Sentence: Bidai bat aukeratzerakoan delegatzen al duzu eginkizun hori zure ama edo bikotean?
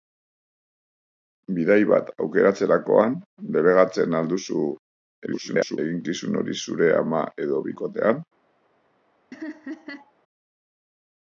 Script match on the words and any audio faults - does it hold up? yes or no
no